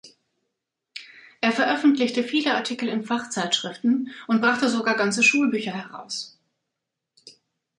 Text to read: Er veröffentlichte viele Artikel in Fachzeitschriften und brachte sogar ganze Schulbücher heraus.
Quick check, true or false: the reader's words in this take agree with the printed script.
true